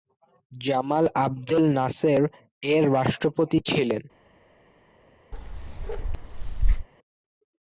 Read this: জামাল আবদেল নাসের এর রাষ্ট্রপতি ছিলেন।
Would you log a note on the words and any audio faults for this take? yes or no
yes